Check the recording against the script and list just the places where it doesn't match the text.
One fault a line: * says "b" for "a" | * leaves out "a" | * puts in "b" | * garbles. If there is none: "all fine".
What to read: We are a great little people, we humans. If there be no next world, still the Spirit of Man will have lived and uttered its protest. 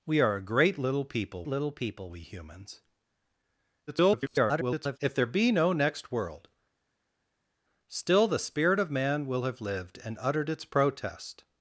* puts in "little people"
* garbles